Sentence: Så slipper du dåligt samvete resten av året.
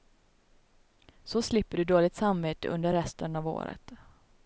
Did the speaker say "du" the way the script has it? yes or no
yes